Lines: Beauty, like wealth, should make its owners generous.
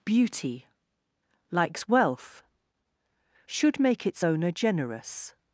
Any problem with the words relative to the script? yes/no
yes